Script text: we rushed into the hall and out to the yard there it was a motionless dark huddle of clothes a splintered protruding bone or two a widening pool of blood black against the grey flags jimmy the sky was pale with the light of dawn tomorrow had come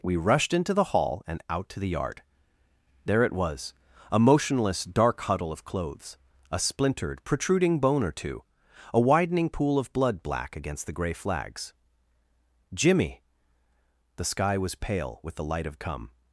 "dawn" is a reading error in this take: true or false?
true